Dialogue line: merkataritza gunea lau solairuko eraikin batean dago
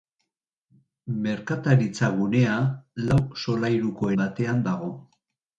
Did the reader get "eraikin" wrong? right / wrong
wrong